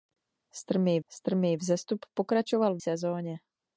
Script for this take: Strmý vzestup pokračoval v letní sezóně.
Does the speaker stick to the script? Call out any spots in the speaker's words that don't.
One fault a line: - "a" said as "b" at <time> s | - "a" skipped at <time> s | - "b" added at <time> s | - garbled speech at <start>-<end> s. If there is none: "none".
- "strmý" added at 1.1 s
- "letní" skipped at 2.8 s